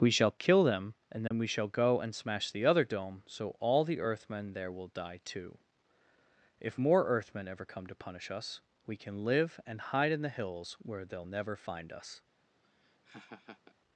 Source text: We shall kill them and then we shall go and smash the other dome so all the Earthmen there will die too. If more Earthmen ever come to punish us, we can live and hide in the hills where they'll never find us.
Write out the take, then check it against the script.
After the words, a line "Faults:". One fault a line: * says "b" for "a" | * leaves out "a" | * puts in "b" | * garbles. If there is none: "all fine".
We shall kill them and then we shall go and smash the other dome so all the Earthmen there will die too. If more Earthmen ever come to punish us, we can live and hide in the hills where they'll never find us.
Faults:
all fine